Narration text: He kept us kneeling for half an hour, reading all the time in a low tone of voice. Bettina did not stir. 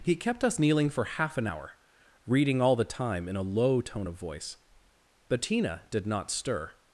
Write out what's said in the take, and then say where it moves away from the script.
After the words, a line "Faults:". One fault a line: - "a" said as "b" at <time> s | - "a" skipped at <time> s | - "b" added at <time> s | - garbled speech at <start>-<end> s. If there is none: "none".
He kept us kneeling for half an hour, reading all the time in a low tone of voice. Bettina did not stir.
Faults:
none